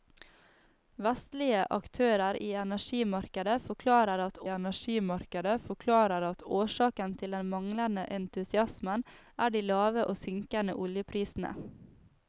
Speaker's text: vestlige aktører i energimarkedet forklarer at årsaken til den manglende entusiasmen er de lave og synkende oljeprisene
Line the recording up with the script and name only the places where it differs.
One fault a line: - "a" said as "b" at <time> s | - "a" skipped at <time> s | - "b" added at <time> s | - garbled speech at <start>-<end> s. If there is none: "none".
- "energimarkedet forklarer at" added at 4.5 s